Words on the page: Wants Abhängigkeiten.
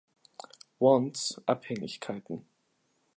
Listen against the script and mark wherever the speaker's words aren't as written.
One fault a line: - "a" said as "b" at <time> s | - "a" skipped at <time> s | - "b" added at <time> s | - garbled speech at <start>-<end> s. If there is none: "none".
none